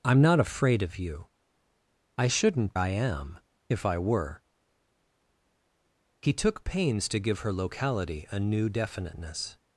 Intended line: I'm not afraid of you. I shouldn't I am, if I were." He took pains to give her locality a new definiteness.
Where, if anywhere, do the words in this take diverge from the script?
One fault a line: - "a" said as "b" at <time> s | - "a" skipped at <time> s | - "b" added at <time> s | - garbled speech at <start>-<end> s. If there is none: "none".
none